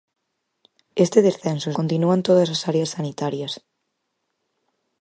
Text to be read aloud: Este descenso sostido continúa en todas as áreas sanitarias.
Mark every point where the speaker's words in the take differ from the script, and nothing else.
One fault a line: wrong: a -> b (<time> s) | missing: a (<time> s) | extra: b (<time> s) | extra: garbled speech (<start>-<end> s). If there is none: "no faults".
missing: sostido (1.7 s)